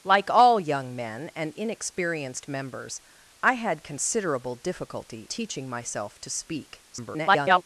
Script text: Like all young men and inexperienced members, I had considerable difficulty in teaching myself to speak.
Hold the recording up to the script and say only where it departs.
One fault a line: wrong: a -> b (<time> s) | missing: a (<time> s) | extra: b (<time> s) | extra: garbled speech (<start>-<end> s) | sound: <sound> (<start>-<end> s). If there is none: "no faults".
missing: in (5.3 s)
extra: garbled speech (6.9-7.6 s)